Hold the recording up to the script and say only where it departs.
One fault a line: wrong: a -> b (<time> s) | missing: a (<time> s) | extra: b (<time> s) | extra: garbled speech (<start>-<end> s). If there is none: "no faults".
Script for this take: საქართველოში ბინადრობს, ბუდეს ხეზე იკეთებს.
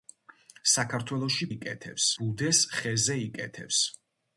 wrong: ბინადრობს -> იკეთებს (1.5 s)